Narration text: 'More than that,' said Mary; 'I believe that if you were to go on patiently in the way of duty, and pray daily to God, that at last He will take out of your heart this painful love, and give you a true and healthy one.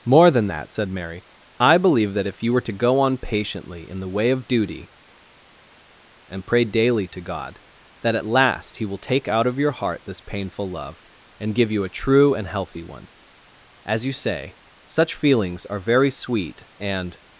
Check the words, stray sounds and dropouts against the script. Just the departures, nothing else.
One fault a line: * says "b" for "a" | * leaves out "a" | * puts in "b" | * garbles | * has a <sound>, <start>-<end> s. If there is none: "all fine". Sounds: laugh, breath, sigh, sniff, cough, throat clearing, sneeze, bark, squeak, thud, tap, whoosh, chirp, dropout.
* puts in "As you say such feelings are very sweet and"